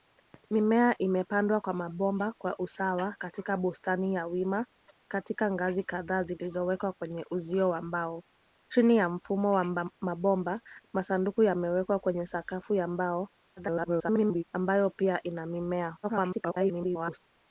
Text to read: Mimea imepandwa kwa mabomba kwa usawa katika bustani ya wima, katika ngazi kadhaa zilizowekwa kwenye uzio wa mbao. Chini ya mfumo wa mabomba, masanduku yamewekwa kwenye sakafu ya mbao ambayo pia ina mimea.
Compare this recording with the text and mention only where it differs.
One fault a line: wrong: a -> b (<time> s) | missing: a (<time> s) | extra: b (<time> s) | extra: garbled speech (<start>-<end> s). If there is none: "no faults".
extra: garbled speech (13.6-14.4 s)
extra: garbled speech (16.0-17.2 s)